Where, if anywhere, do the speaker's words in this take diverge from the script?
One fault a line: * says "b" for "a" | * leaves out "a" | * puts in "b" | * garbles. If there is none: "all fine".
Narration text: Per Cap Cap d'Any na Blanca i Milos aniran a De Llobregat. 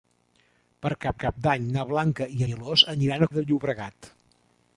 all fine